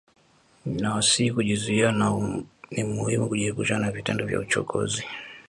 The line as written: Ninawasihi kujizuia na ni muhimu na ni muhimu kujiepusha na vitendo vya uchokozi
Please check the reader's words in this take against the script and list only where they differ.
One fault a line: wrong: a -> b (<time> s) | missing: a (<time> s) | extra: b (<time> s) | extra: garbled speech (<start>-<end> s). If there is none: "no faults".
missing: na ni muhimu (3.3 s)